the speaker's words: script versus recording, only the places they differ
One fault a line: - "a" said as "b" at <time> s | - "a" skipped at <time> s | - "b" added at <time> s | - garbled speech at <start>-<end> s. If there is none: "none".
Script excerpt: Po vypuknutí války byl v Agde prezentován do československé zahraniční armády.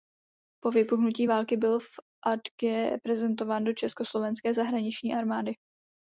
none